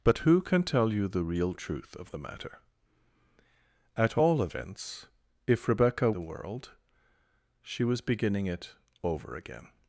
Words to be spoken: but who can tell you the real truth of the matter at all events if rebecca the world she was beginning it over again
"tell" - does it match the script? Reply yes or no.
yes